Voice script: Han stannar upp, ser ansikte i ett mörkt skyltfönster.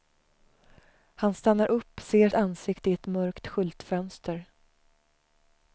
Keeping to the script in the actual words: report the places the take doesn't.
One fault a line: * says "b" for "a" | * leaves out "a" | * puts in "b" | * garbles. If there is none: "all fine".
all fine